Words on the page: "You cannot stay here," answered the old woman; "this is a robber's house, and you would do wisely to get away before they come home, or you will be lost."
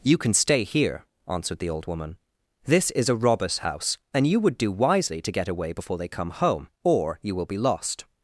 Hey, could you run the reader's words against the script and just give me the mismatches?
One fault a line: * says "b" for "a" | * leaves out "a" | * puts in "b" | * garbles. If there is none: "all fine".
* says "can" for "cannot"